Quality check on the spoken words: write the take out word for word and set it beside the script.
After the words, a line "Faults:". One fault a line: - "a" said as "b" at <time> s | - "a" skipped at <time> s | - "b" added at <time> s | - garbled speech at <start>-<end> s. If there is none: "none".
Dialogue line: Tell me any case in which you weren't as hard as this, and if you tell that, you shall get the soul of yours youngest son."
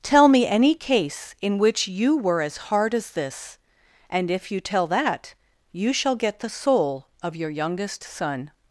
Tell me any case in which you were as hard as this, and if you tell that, you shall get the soul of your youngest son."
Faults:
- "weren't" said as "were" at 2.2 s
- "yours" said as "your" at 7.4 s